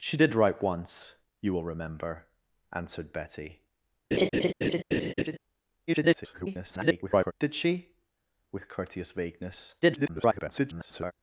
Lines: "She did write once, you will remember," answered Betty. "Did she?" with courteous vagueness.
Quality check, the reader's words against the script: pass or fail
fail